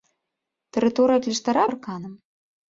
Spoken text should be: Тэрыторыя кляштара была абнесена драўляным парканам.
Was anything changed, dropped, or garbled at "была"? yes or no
yes